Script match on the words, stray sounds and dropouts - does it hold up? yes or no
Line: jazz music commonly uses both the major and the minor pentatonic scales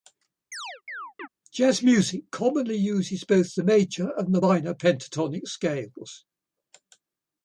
no